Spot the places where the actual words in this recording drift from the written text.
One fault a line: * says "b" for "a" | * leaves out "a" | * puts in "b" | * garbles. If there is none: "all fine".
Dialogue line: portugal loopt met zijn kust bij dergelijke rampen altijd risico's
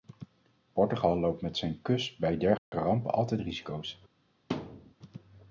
all fine